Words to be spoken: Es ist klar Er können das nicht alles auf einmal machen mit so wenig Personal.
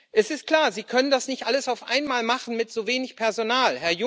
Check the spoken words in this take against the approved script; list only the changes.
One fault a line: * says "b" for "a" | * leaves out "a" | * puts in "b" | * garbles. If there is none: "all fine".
* says "Sie" for "Er"